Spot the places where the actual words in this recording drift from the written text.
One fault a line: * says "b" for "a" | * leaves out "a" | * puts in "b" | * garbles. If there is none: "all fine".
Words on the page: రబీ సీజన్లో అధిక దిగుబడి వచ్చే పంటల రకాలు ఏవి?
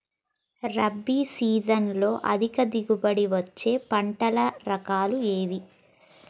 all fine